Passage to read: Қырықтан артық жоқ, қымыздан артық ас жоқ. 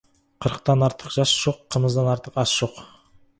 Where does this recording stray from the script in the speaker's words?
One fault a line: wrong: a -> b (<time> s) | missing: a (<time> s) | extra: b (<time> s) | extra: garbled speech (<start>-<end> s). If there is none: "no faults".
extra: жас (1.2 s)